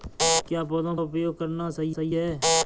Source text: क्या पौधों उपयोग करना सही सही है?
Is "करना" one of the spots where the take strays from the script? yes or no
no